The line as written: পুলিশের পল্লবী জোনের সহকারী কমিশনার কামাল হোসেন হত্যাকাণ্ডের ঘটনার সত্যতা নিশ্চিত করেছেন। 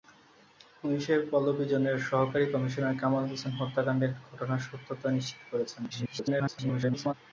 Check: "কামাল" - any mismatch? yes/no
no